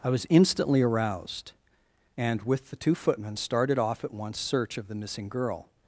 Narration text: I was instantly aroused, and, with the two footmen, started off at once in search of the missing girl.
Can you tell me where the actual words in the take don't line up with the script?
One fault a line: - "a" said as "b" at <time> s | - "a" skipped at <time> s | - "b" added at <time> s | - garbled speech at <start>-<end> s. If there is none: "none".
- "in" skipped at 4.4 s